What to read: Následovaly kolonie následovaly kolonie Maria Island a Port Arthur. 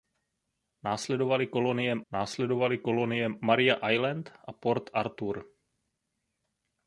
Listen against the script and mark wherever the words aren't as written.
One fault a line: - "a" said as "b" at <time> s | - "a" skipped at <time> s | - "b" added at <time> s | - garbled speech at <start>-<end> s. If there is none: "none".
none